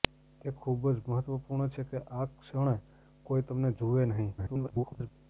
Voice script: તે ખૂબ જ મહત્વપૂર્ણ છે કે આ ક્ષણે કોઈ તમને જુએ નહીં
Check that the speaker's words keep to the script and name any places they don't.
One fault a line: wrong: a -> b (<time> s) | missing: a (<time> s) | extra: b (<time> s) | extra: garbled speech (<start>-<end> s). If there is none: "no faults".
extra: garbled speech (4.4-5.1 s)